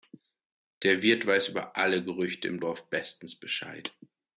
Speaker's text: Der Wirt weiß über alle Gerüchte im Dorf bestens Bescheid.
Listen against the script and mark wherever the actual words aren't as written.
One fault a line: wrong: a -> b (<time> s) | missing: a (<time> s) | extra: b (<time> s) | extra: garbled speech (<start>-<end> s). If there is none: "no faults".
no faults